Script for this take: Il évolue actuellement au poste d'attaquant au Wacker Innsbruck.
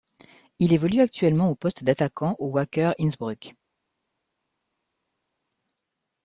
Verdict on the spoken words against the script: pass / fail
pass